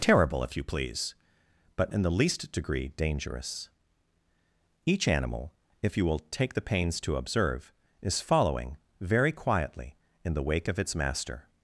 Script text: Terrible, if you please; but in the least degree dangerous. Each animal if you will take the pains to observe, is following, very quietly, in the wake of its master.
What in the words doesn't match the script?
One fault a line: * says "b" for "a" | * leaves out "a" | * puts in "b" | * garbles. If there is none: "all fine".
all fine